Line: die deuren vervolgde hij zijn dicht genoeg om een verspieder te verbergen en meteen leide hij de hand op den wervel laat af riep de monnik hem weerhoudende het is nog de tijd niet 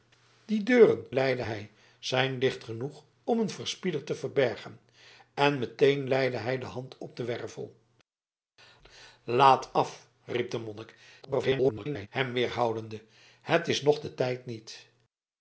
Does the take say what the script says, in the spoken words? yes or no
no